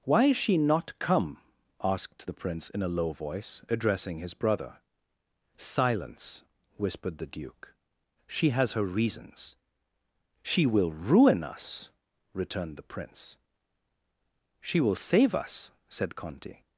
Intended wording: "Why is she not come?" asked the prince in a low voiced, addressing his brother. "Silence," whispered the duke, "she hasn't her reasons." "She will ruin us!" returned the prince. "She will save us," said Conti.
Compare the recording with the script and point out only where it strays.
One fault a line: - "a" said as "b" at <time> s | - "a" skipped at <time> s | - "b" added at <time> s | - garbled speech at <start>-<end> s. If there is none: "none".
- "voiced" said as "voice" at 3.1 s
- "hasn't" said as "has" at 8.5 s